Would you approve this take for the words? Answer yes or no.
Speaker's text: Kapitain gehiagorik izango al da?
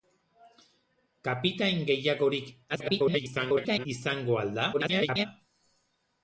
no